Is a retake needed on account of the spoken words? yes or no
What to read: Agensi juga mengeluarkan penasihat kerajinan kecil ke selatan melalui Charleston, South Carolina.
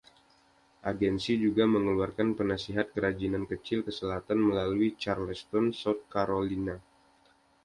no